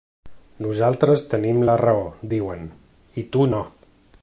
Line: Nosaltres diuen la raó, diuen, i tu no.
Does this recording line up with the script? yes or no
no